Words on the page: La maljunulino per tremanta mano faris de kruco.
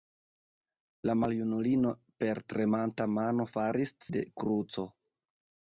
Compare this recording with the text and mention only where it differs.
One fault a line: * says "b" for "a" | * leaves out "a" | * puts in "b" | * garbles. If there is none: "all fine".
all fine